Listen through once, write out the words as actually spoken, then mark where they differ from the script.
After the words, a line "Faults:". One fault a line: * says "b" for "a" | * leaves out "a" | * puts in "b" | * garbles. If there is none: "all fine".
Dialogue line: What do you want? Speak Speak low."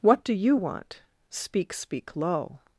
What do you want? Speak Speak low."
Faults:
all fine